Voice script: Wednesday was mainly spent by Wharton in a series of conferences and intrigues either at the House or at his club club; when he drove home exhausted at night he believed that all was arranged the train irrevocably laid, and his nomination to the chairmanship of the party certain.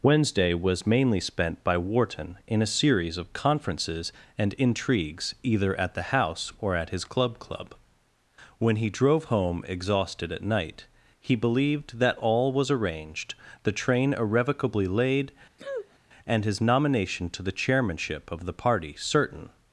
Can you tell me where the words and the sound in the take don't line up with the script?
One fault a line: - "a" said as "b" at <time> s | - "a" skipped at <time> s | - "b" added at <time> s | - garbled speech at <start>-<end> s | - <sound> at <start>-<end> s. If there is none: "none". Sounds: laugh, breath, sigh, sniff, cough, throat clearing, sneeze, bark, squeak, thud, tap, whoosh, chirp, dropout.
- sniff at 15.6-16.0 s